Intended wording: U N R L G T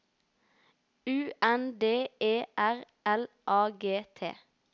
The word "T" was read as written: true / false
true